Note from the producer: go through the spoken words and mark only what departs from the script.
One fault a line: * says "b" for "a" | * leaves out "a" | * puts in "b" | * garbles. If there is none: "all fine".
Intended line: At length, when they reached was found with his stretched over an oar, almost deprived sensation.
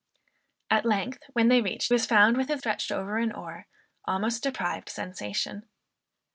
all fine